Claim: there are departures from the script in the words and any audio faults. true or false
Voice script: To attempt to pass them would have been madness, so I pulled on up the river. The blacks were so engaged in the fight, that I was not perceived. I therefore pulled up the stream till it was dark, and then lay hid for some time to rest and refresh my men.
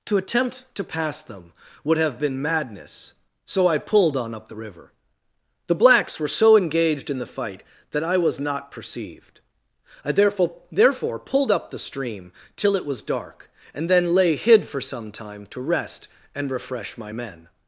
true